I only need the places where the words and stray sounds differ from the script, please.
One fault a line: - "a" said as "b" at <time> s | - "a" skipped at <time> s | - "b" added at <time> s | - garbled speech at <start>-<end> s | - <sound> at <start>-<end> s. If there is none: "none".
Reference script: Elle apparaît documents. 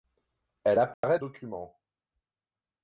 - dropout at 0.9-1.0 s